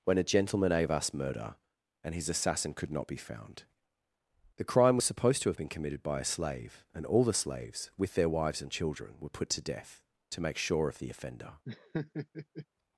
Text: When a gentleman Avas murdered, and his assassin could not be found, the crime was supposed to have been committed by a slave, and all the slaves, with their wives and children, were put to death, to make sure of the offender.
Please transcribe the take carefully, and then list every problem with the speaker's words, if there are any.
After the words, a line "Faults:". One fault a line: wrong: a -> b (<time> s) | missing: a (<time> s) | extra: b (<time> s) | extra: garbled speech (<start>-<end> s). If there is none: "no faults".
When a gentleman Avas murder, and his assassin could not be found, the crime was supposed to have been committed by a slave, and all the slaves, with their wives and children, were put to death, to make sure of the offender.
Faults:
wrong: murdered -> murder (1.1 s)